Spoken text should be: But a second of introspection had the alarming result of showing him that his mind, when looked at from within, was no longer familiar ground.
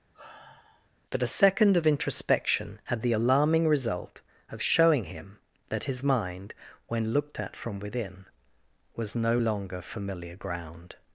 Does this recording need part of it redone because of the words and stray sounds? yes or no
yes